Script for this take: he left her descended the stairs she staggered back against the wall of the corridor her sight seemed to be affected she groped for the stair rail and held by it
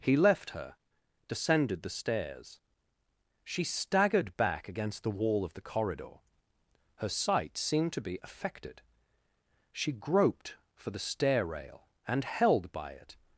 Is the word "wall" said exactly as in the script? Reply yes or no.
yes